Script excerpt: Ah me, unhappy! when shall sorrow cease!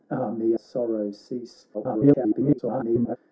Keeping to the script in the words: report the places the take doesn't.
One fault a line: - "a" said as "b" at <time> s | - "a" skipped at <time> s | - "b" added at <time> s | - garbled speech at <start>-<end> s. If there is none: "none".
- "unhappy when shall" skipped at 0.6 s
- garbled speech at 1.7-3.2 s